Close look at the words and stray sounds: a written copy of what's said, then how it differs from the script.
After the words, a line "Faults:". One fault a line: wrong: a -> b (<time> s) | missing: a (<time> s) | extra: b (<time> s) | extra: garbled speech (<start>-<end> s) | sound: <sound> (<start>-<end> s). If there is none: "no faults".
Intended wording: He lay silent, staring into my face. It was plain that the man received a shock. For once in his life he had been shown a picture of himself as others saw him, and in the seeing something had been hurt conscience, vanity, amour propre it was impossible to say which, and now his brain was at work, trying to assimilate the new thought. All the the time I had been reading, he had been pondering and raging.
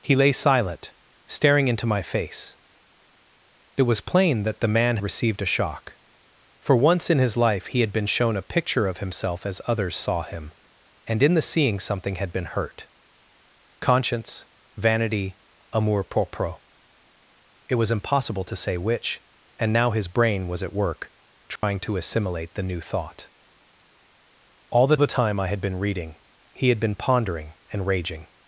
He lay silent, staring into my face. It was plain that the man received a shock. For once in his life he had been shown a picture of himself as others saw him, and in the seeing something had been hurt conscience, vanity, amour propre it was impossible to say which, and now his brain was at work, trying to assimilate the new thought. All the the time I had been reading, he had been pondering and raging.
Faults:
sound: dropout (21.6-21.6 s)